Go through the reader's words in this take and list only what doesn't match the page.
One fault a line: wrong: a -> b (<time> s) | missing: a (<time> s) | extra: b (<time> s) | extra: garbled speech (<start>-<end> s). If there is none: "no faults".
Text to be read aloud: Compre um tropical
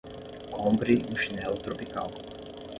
extra: chinelo (1.1 s)